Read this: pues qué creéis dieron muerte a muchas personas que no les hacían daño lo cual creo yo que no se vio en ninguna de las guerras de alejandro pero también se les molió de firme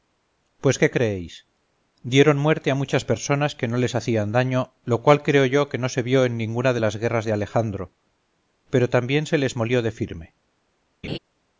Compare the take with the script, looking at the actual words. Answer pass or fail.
pass